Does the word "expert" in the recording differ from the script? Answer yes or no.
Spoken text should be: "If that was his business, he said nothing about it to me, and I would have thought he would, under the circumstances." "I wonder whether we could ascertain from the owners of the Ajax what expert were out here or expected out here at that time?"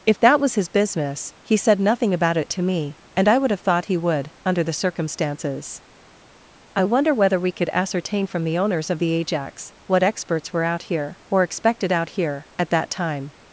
yes